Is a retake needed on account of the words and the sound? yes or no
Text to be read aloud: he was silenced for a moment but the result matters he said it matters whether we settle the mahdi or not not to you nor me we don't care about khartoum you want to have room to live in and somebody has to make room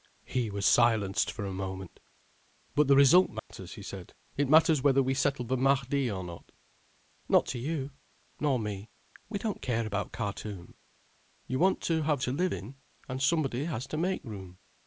yes